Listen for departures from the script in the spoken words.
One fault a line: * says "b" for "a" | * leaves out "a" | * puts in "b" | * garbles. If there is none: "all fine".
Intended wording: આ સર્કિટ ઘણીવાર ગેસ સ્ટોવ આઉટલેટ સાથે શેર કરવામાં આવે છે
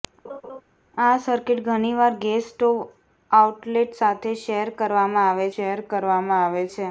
* puts in "શેર કરવામાં આવે"